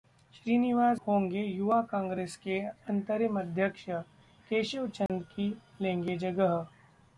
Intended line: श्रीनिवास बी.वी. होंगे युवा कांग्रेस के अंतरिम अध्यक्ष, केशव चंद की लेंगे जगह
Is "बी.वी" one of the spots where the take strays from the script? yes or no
yes